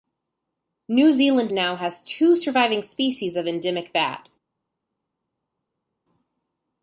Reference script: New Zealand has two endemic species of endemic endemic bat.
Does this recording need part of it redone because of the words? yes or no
yes